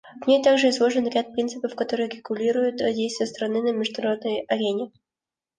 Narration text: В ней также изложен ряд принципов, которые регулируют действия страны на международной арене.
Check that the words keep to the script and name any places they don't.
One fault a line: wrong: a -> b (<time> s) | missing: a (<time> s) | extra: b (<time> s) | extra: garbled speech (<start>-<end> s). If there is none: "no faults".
no faults